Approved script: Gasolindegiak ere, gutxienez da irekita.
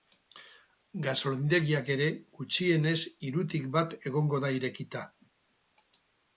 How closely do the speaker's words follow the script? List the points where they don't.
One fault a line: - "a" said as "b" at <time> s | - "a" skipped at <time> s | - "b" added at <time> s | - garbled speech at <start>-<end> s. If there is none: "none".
- "hirutik bat egongo" added at 3.3 s